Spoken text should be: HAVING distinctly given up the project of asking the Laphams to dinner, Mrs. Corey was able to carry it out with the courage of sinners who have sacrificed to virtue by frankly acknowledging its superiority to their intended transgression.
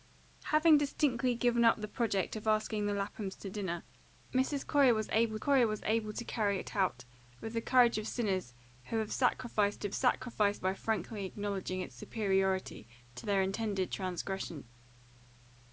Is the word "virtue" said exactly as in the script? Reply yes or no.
no